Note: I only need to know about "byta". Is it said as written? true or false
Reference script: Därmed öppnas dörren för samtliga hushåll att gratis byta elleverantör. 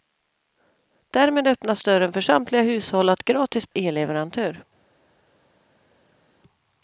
false